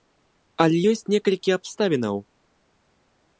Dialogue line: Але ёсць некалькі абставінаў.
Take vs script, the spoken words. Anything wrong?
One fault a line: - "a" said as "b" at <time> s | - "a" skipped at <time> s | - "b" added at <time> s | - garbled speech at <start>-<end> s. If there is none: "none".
none